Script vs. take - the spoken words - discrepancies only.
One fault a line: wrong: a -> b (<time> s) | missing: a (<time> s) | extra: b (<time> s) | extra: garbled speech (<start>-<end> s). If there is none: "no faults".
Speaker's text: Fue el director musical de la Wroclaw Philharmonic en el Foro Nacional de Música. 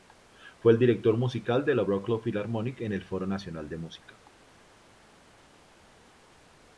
no faults